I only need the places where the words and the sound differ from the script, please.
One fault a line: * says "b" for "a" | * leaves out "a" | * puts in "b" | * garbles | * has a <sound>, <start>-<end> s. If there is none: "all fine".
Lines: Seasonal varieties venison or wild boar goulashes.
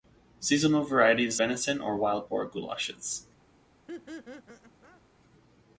* has a laugh, 3.9-5.0 s